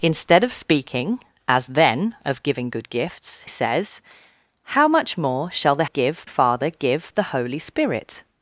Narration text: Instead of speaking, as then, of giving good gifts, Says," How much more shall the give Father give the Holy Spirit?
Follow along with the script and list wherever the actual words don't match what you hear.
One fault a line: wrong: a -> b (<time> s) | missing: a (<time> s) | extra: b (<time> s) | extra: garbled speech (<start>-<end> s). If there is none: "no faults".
no faults